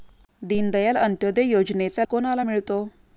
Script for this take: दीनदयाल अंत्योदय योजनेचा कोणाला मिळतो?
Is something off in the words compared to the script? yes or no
no